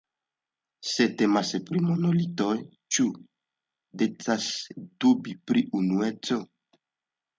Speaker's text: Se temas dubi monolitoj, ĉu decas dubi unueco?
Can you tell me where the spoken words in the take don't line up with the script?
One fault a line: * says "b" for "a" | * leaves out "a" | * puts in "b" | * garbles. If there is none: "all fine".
* says "pri" for "dubi"
* puts in "pri"